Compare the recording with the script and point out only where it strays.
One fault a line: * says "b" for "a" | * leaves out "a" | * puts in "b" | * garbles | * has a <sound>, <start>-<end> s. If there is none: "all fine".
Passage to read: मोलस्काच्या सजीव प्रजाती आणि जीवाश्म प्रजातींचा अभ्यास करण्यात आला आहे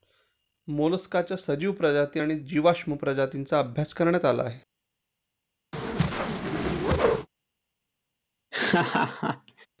* has a whoosh, 5.7-7.3 s
* has a laugh, 8.5-9.7 s